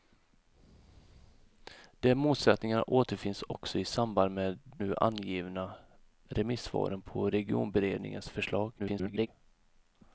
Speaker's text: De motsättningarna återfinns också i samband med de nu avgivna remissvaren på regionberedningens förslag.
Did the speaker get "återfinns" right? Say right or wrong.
right